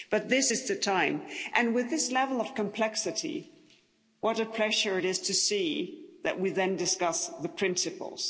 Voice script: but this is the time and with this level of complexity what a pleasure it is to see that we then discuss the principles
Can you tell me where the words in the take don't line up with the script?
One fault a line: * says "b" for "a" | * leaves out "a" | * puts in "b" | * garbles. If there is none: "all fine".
all fine